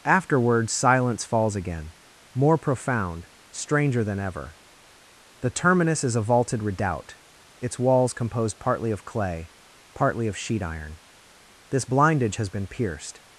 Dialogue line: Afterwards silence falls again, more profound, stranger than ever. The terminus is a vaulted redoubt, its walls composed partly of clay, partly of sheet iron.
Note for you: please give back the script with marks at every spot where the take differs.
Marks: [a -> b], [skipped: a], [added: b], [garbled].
Afterwards silence falls again, more profound, stranger than ever. The terminus is a vaulted redoubt, its walls composed partly of clay, partly of sheet iron. [added: This blindage has been pierced]